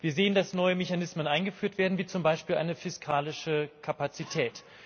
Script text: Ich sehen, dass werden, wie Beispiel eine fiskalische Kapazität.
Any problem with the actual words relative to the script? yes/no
yes